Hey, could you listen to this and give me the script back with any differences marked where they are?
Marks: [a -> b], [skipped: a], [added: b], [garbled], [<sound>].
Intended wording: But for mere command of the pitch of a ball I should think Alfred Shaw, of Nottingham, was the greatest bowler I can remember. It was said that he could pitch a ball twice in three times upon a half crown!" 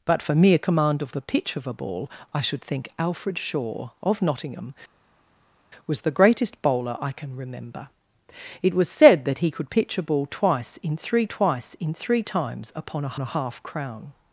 But for mere command of the pitch of a ball I should think Alfred Shaw, of Nottingham, was the greatest bowler I can remember. It was said that he could pitch a ball twice in three [added: twice in three] times upon a [added: a] half crown!"